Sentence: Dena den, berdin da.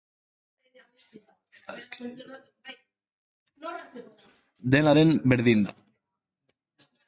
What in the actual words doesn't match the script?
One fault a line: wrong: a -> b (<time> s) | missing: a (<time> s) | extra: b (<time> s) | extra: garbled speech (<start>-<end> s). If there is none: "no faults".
no faults